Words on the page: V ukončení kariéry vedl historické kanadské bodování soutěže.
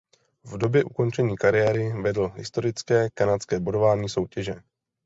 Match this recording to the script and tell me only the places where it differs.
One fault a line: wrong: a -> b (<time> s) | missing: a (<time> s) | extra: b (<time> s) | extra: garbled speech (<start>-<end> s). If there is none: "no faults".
extra: době (0.6 s)